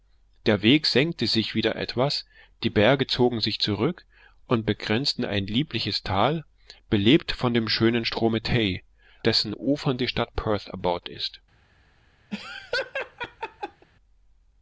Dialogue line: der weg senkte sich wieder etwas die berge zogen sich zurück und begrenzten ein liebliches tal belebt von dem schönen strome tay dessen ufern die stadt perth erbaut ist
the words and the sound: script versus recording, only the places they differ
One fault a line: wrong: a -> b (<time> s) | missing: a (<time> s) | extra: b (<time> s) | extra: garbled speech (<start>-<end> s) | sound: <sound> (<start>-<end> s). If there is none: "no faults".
sound: laugh (12.3-13.9 s)